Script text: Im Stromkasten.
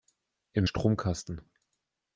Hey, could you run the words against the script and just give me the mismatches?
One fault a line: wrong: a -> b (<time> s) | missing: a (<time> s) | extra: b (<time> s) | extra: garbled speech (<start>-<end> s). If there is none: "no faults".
no faults